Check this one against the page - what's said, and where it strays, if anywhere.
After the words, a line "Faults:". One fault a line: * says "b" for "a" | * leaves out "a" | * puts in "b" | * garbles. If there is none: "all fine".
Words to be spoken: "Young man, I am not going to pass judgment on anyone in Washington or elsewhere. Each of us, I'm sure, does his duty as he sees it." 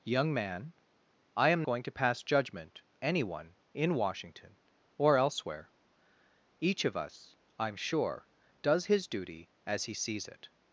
"Young man, I am going to pass judgment anyone in Washington or elsewhere. Each of us, I'm sure, does his duty as he sees it."
Faults:
* leaves out "not"
* leaves out "on"